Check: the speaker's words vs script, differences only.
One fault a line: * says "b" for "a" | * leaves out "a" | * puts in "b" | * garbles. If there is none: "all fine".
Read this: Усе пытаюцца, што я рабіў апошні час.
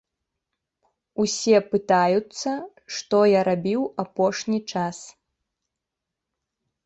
all fine